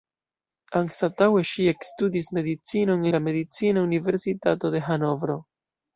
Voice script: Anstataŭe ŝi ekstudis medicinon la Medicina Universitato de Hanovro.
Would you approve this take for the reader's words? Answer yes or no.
yes